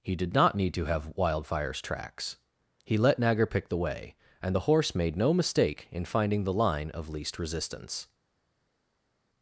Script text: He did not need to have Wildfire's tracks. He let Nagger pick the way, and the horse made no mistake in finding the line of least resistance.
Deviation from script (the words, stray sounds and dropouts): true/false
false